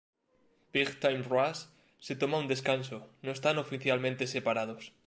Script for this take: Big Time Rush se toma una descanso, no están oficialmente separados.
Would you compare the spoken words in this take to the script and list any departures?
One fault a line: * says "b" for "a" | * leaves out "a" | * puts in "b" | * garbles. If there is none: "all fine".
* says "un" for "una"